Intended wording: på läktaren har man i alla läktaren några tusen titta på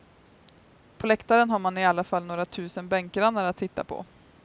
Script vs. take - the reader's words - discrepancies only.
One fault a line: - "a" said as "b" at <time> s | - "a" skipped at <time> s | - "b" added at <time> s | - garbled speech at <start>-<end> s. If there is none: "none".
- "läktaren" said as "fall" at 2.0 s
- "bänkgrannar att" added at 2.9 s